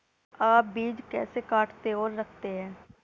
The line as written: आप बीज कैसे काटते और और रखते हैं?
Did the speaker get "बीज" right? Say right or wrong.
right